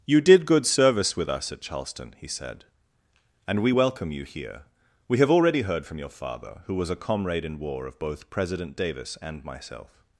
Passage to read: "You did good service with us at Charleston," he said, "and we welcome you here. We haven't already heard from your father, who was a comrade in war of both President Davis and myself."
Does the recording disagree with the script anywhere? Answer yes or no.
yes